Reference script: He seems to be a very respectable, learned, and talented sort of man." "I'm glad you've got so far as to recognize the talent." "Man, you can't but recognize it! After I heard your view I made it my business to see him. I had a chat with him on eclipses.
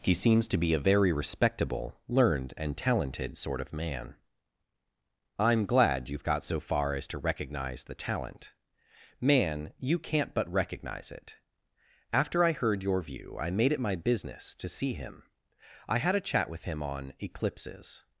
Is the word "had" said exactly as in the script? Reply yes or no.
yes